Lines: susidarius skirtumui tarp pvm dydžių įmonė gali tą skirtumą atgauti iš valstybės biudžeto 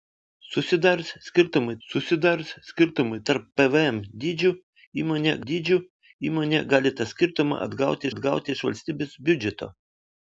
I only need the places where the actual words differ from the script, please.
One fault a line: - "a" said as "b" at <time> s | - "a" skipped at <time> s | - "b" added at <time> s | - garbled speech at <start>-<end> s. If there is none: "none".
- "susidarius skirtumui" added at 1.9 s
- "dydžių įmonė" added at 5.5 s
- "atgauti" added at 8.1 s